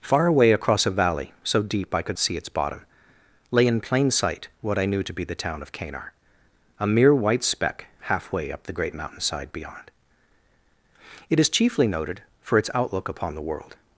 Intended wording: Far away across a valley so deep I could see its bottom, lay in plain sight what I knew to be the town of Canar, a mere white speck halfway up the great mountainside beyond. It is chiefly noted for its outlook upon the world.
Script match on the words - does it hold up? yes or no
yes